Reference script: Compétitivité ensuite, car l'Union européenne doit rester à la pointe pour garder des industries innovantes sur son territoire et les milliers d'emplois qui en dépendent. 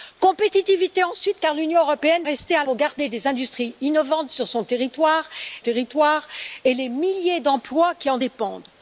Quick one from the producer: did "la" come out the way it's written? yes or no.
no